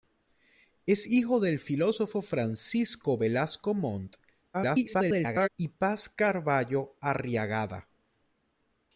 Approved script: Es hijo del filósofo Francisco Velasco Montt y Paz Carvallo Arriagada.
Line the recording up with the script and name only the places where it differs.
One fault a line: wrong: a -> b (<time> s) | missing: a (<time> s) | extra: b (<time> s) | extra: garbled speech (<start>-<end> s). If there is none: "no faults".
extra: garbled speech (4.5-5.5 s)